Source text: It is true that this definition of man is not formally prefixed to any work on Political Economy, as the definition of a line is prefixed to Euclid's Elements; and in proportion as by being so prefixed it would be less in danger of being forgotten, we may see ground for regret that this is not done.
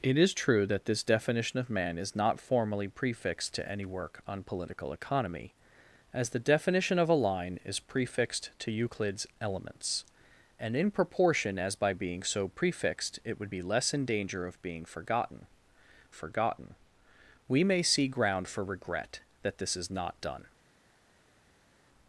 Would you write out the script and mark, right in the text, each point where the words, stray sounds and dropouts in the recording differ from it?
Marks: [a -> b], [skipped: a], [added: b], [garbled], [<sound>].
It is true that this definition of man is not formally prefixed to any work on Political Economy, as the definition of a line is prefixed to Euclid's Elements; and in proportion as by being so prefixed it would be less in danger of being forgotten, [added: forgotten] we may see ground for regret that this is not done.